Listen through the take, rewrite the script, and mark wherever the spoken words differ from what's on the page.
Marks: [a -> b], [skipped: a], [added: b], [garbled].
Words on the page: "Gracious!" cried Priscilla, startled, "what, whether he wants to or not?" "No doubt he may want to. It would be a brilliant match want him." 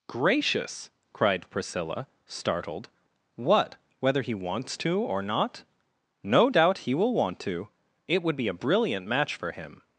"Gracious!" cried Priscilla, startled, "what, whether he wants to or not?" "No doubt he [may -> will] want to. It would be a brilliant match [want -> for] him."